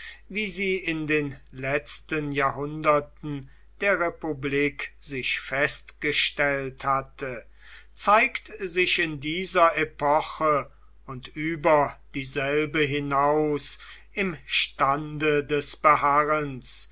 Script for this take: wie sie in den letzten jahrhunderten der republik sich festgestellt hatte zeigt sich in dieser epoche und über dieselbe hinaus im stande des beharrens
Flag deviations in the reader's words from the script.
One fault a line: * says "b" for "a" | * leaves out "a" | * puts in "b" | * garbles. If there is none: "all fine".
all fine